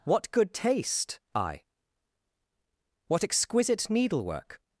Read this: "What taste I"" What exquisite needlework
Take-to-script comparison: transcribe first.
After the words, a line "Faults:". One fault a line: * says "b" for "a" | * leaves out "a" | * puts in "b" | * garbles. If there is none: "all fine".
"What good taste I"" What exquisite needlework
Faults:
* puts in "good"